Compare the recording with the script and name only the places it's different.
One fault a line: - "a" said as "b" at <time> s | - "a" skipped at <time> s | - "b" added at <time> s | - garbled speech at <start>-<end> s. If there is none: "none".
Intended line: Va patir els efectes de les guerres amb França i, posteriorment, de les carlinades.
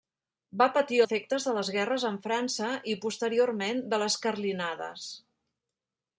- "els" skipped at 1.0 s